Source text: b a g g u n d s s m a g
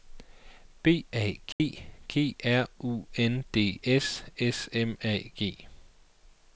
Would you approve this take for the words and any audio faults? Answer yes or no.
no